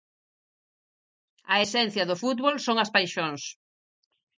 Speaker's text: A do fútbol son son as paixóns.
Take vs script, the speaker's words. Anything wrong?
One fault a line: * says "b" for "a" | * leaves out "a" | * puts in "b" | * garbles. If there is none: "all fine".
* puts in "esencia"
* leaves out "son"